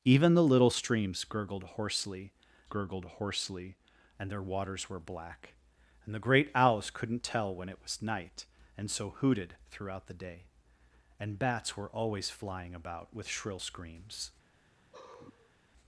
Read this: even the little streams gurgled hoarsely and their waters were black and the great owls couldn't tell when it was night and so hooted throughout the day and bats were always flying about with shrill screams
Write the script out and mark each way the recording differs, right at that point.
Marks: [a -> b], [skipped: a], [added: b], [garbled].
even the little streams gurgled hoarsely [added: gurgled hoarsely] and their waters were black and the great owls couldn't tell when it was night and so hooted throughout the day and bats were always flying about with shrill screams